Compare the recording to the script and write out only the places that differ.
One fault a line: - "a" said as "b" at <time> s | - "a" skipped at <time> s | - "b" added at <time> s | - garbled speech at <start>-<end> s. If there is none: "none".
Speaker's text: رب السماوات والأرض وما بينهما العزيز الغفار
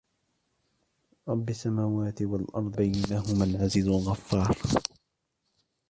- "وما" skipped at 2.8 s